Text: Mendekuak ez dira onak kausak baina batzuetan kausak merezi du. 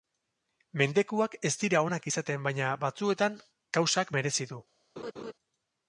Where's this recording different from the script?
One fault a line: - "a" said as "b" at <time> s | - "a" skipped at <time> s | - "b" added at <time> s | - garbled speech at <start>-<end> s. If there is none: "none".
- "kausak" said as "izaten" at 2.1 s